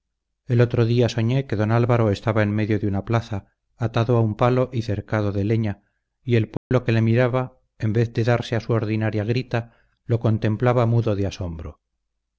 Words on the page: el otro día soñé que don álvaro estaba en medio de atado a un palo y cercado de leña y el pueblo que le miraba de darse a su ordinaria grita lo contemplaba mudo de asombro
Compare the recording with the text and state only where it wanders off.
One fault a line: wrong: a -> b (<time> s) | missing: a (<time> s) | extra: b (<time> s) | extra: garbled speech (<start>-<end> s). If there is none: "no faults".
extra: una plaza (2.9 s)
extra: en vez (7.8 s)